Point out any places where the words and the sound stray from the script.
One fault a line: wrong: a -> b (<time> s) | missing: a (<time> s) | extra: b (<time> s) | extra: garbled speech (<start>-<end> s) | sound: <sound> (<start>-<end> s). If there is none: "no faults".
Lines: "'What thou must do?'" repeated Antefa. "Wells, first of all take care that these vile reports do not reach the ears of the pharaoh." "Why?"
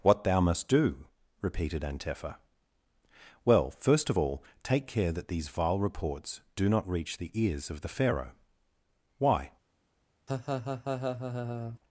wrong: Wells -> Well (3.5 s)
sound: laugh (10.3-11.8 s)